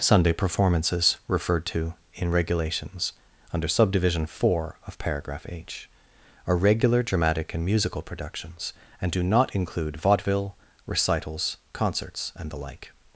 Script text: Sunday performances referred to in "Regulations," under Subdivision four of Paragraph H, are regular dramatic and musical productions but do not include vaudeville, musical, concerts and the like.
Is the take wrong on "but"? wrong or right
wrong